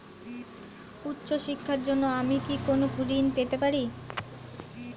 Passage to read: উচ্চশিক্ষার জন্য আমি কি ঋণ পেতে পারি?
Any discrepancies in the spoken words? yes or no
yes